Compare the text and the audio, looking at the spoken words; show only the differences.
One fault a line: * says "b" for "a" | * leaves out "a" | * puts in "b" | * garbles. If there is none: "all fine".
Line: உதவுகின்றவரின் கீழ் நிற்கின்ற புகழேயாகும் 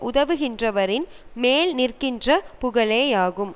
* says "மேல்" for "கீழ்"